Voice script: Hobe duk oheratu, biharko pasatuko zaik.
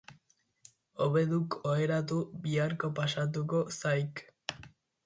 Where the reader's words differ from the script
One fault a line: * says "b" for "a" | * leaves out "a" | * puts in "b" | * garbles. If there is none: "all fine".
all fine